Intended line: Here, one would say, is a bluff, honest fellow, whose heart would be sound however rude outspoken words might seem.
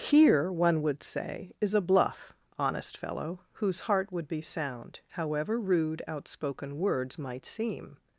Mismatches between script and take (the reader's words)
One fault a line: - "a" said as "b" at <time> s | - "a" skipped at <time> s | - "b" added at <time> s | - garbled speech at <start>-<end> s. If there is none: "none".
none